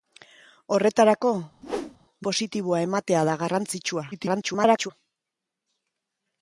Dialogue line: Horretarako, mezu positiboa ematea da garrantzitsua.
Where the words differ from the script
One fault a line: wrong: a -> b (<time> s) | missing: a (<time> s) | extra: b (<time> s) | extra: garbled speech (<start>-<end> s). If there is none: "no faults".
missing: mezu (1.3 s)
extra: garbled speech (4.1-4.9 s)